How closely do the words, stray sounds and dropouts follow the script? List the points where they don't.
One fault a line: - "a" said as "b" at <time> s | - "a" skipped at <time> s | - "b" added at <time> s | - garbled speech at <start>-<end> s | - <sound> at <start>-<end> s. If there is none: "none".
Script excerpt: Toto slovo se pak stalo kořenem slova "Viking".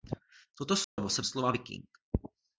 - dropout at 0.8-1.0 s
- "pak stalo kořenem" skipped at 1.2 s